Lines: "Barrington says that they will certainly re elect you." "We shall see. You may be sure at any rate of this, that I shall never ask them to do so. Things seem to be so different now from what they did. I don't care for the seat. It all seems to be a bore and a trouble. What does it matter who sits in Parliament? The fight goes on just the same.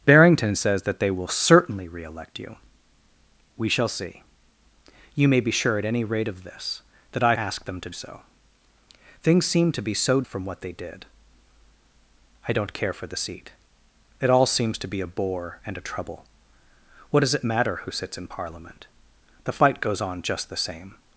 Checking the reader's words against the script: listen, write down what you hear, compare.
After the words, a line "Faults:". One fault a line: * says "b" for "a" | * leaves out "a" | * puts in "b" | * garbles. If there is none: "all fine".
"Barrington says that they will certainly re elect you." "We shall see. You may be sure at any rate of this, that I ask them to so. Things seem to be so from what they did. I don't care for the seat. It all seems to be a bore and a trouble. What does it matter who sits in Parliament? The fight goes on just the same.
Faults:
* leaves out "shall never"
* leaves out "do"
* leaves out "different now"